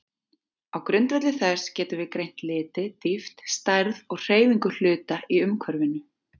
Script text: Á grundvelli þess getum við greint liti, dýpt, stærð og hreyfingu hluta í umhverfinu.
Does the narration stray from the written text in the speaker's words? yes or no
no